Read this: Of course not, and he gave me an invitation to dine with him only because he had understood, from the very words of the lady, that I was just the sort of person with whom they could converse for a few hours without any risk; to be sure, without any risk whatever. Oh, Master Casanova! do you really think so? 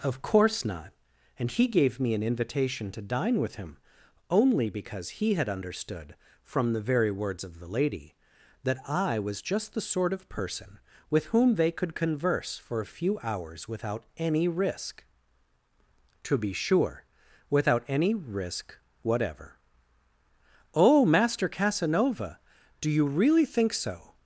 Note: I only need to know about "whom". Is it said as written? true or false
true